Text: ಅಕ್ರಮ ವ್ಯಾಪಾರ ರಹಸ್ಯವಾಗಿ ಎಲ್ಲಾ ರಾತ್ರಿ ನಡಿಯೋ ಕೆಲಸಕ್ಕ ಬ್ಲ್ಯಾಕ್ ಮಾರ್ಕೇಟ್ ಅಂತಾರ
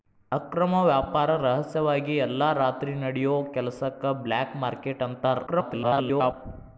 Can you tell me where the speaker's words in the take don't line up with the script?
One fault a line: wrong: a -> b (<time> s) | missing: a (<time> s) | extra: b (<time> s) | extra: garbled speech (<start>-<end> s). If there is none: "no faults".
extra: garbled speech (5.5-6.3 s)